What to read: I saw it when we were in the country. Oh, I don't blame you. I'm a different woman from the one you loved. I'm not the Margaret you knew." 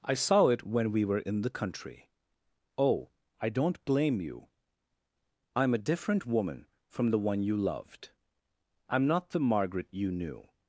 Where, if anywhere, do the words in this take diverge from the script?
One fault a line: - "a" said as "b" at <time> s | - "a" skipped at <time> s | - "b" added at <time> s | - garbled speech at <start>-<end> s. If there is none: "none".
none